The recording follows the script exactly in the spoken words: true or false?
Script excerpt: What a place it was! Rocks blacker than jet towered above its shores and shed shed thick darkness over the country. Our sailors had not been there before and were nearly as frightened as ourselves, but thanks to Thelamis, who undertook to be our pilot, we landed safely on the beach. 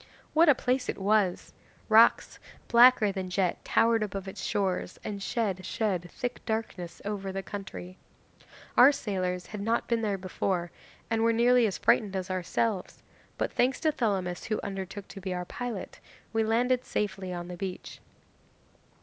true